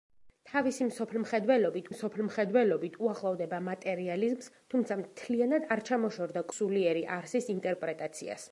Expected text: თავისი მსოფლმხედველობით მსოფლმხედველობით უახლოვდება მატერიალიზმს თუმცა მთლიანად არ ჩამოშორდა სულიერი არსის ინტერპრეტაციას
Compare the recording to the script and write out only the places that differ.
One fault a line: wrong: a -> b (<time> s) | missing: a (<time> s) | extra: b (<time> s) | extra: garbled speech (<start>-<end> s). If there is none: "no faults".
no faults